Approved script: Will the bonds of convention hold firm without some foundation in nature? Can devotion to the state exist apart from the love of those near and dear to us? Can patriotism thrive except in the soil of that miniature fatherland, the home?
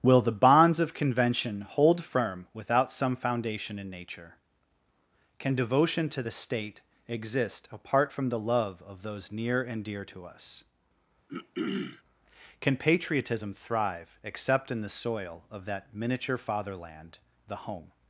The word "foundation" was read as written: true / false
true